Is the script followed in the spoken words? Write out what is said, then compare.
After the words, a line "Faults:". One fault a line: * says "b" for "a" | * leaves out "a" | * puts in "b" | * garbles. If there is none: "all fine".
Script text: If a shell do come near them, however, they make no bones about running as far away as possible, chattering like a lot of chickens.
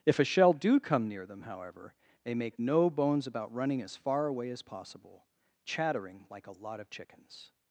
If a shell do come near them, however, they make no bones about running as far away as possible, chattering like a lot of chickens.
Faults:
all fine